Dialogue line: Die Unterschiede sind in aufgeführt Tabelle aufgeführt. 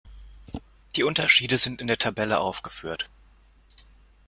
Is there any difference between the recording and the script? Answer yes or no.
yes